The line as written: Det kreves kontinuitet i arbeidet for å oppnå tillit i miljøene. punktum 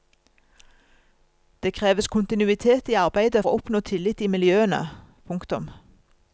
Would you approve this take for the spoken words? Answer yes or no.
no